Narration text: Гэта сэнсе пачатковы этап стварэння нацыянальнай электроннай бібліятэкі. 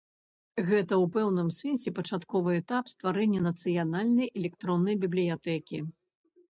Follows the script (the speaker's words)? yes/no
no